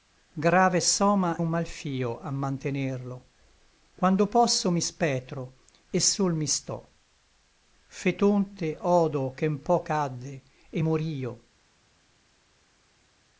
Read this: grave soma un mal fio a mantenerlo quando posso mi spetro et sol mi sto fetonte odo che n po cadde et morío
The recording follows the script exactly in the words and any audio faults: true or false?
true